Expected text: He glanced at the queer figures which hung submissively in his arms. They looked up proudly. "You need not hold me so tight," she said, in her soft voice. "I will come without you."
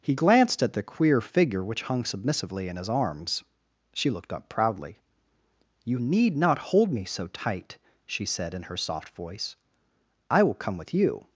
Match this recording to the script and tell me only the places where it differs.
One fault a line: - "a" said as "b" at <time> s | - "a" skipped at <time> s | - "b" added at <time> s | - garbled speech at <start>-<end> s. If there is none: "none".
- "figures" said as "figure" at 1.2 s
- "They" said as "She" at 3.9 s
- "without" said as "with" at 10.8 s